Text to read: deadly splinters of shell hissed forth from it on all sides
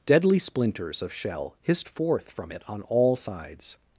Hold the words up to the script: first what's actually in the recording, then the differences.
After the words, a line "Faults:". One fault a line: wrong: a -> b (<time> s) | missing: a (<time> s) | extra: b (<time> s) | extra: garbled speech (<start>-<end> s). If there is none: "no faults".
deadly splinters of shell hissed forth from it on all sides
Faults:
no faults